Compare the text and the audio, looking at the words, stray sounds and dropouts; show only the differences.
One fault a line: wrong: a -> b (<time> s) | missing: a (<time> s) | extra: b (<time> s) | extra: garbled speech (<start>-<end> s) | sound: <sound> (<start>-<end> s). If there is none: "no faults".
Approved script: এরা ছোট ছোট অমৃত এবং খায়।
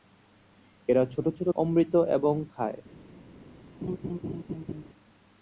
sound: laugh (3.8-4.8 s)